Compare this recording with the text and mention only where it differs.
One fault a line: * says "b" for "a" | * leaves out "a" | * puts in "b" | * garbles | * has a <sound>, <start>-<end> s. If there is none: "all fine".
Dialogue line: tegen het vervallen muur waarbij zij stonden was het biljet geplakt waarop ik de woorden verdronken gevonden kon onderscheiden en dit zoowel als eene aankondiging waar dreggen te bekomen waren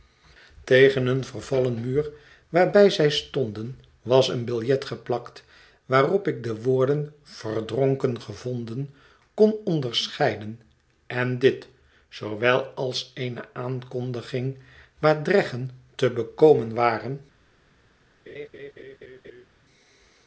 * says "een" for "het"
* says "een" for "het"
* has a laugh, 18.3-19.5 s